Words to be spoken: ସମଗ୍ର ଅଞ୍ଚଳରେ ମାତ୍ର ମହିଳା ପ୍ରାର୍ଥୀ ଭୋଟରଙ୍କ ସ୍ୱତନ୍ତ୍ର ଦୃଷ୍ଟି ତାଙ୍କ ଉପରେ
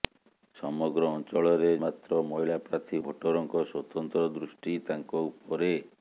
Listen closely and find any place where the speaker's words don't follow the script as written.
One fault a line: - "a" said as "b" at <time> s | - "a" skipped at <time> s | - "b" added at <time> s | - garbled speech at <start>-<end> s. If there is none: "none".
none